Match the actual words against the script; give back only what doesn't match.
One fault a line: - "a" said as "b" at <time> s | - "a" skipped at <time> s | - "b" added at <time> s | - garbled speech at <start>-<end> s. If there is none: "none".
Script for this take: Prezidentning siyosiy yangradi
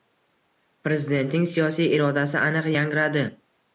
- "irodasi aniq" added at 2.0 s